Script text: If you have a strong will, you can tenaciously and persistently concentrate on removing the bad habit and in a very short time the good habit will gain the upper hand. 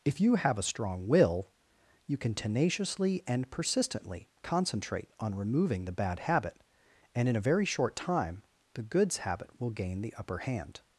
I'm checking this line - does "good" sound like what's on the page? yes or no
no